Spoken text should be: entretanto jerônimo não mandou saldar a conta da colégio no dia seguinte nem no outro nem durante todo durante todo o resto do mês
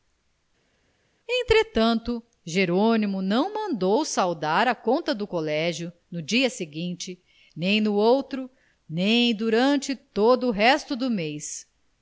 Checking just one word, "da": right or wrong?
wrong